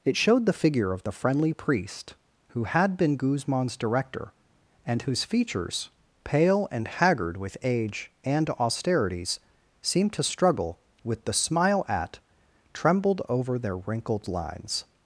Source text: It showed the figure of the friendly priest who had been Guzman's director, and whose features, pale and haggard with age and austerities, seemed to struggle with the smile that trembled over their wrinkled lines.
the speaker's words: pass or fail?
fail